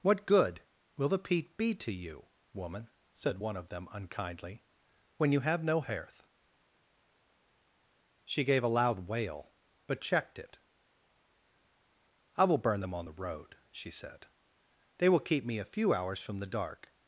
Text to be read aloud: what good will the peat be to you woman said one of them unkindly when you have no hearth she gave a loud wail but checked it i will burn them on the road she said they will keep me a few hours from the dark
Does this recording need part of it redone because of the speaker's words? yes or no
no